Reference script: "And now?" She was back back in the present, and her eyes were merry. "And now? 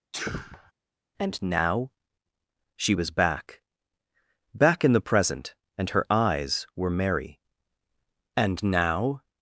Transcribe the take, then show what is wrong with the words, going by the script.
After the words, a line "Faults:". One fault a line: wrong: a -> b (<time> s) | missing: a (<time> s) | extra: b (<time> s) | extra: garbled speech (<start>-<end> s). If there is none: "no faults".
"And now?" She was back back in the present, and her eyes were merry. "And now?
Faults:
no faults